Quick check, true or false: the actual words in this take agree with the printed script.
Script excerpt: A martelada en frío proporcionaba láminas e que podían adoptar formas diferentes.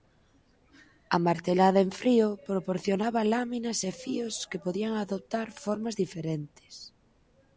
false